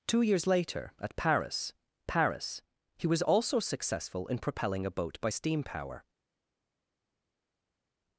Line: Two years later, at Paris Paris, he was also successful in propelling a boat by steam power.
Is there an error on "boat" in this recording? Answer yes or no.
no